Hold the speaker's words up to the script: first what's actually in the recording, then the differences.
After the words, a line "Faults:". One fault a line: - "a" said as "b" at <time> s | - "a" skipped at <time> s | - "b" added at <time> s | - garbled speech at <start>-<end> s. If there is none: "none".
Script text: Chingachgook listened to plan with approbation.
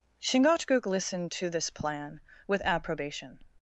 Chingachgook listened to this plan with approbation.
Faults:
- "this" added at 1.5 s